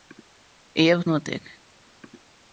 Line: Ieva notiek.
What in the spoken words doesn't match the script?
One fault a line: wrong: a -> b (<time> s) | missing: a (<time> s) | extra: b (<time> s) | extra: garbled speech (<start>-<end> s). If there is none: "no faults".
no faults